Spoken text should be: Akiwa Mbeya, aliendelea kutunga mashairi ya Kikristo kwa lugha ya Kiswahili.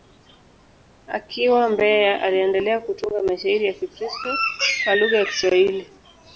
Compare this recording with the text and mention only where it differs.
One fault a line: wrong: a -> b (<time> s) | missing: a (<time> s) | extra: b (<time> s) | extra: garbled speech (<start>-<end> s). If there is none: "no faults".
no faults